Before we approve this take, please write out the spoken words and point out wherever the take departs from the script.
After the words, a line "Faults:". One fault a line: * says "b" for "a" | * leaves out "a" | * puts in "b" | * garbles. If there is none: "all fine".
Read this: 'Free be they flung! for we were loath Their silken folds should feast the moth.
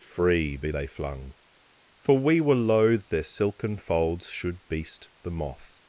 'Free be they flung! for we were loath Their silken folds should beast the moth.
Faults:
* says "beast" for "feast"